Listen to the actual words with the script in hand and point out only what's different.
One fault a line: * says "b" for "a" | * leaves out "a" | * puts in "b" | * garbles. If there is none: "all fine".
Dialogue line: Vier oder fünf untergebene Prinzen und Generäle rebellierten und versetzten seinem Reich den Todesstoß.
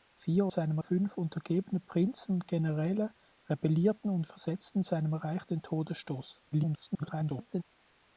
* says "seinem" for "oder"
* garbles